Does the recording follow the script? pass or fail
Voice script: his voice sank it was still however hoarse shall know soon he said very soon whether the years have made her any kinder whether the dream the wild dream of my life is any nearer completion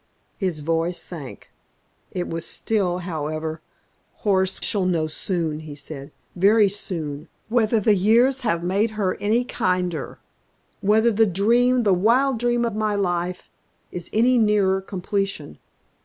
pass